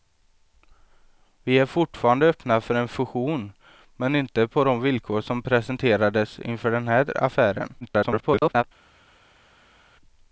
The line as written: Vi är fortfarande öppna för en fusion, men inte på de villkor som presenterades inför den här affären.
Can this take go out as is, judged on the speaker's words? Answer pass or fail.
fail